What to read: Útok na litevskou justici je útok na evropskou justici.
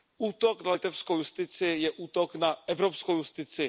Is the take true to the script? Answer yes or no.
yes